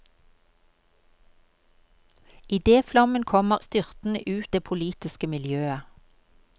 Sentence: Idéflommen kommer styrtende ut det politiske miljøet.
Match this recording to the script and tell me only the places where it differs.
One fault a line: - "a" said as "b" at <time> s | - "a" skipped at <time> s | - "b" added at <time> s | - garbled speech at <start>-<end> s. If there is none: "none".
none